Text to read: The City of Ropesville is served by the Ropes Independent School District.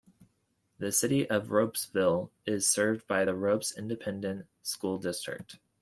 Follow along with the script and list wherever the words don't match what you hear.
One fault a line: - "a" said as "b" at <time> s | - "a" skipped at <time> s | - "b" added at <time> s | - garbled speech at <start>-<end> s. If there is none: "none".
none